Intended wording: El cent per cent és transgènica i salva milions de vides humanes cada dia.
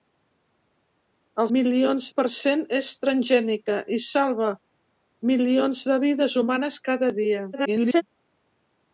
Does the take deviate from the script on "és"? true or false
false